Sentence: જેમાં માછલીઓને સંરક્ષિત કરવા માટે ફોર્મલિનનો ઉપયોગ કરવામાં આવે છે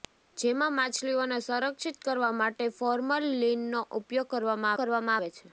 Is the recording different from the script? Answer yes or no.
yes